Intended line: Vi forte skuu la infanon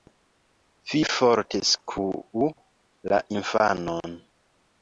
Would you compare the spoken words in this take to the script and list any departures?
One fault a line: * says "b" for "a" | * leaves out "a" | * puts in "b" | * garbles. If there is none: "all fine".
all fine